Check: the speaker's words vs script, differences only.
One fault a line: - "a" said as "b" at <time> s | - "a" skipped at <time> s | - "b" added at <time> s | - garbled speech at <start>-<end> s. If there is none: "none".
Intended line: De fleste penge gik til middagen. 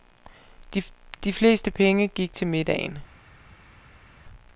none